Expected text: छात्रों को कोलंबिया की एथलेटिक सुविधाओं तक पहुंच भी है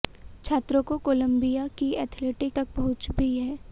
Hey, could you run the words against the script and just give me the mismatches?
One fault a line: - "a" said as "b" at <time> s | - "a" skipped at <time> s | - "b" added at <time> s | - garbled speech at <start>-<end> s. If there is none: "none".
- "सुविधाओं" skipped at 2.5 s